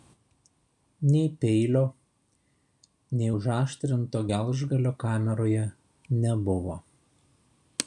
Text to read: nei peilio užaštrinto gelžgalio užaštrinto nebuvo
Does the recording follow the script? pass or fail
fail